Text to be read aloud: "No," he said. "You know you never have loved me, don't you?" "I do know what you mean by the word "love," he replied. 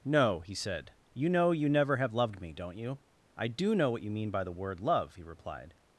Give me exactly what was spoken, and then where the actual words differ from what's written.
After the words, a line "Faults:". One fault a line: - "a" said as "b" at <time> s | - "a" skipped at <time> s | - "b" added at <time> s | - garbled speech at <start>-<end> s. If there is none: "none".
"No," he said. "You know you never have loved me, don't you?" "I do know what you mean by the word "love," he replied.
Faults:
none